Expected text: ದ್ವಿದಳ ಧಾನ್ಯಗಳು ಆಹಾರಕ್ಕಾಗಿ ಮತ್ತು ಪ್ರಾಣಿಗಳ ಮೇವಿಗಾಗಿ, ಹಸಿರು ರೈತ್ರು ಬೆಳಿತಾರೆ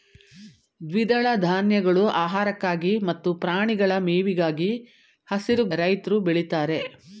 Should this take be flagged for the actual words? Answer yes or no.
no